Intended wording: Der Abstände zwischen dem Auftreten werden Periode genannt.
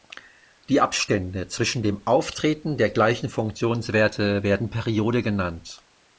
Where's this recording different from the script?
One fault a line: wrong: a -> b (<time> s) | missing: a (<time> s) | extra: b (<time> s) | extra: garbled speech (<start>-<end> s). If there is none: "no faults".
wrong: Der -> Die (0.7 s)
extra: der gleichen Funktionswerte (2.8 s)